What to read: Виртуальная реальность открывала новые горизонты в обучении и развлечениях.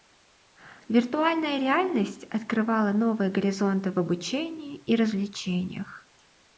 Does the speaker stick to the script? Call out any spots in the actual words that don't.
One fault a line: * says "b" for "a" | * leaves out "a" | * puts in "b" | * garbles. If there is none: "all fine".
all fine